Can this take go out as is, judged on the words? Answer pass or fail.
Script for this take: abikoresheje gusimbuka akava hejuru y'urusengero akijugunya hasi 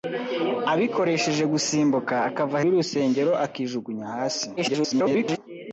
fail